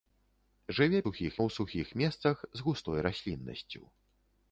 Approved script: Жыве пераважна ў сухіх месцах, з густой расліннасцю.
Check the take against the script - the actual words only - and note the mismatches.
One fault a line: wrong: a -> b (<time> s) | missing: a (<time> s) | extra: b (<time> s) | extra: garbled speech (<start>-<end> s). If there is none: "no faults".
wrong: пераважна -> сухіх (1.0 s)